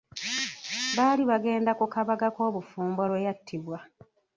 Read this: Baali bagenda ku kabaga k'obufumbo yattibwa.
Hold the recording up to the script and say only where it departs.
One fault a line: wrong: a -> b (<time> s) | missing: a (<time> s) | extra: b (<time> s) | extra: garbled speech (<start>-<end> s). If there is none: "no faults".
extra: lwe (3.1 s)